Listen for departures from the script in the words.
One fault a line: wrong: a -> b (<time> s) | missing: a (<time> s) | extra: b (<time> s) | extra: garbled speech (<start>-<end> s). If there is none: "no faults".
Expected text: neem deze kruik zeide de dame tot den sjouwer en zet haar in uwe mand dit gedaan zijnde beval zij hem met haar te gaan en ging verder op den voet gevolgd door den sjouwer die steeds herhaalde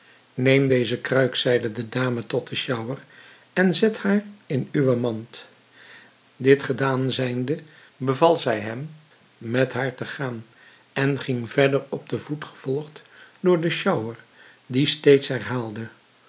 no faults